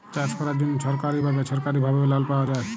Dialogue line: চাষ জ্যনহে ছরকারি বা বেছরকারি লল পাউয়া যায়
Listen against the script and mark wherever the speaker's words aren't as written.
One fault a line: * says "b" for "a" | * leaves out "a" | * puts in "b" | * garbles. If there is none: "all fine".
* puts in "ক্যরার"
* puts in "ভাবে"